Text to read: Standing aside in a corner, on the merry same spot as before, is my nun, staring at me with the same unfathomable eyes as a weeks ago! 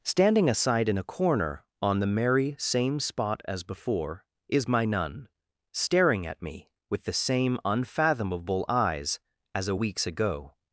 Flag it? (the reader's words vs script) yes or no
no